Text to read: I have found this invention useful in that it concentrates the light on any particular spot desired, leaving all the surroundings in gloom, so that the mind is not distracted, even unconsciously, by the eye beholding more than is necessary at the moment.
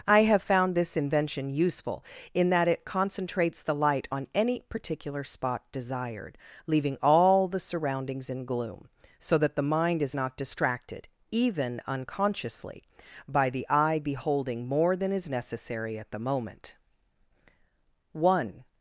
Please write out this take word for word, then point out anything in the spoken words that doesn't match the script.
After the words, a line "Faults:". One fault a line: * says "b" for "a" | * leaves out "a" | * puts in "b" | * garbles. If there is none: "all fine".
I have found this invention useful in that it concentrates the light on any particular spot desired, leaving all the surroundings in gloom, so that the mind is not distracted, even unconsciously, by the eye beholding more than is necessary at the moment. One
Faults:
* puts in "One"